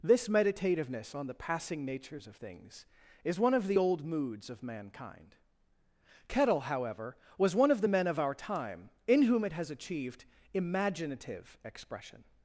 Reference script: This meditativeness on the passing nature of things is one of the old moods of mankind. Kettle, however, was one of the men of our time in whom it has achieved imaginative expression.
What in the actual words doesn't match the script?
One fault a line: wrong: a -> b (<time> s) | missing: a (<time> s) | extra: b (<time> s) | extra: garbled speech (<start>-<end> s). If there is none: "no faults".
wrong: nature -> natures (1.9 s)